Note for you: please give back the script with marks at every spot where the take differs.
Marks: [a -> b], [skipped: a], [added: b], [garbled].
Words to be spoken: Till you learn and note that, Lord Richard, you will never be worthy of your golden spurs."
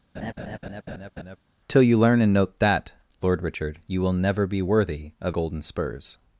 Till you learn and note that, Lord Richard, you will never be worthy of [skipped: your] golden spurs."